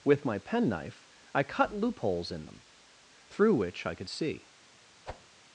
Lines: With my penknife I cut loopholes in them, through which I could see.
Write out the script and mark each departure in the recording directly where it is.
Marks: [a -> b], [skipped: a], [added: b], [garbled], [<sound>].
With my penknife I cut loopholes in them, through which I could see. [whoosh]